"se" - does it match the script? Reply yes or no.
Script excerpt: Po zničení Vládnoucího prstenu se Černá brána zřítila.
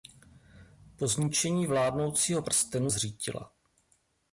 no